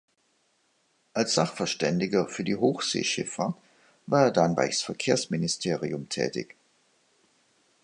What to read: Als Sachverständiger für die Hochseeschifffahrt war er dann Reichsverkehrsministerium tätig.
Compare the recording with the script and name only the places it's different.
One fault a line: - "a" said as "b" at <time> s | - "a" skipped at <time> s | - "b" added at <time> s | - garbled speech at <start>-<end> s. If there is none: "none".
none